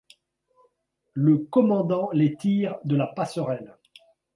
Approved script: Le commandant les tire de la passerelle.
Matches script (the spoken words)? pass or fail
pass